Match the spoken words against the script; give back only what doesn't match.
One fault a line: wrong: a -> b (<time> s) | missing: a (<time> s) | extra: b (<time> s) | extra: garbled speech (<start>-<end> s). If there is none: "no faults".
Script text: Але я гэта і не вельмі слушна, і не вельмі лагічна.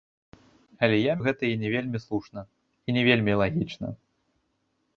no faults